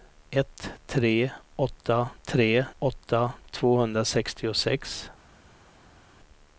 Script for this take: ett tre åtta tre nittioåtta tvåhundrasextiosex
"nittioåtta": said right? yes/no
no